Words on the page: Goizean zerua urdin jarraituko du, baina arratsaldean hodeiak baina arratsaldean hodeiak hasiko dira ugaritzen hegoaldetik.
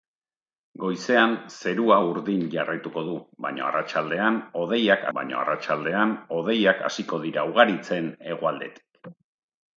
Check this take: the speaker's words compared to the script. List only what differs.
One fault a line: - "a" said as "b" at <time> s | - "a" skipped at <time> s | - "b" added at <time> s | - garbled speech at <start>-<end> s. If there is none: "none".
none